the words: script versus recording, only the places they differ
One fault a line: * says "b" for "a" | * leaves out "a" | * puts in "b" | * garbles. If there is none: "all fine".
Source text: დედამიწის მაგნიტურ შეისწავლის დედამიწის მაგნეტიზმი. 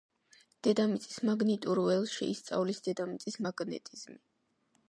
* puts in "ველს"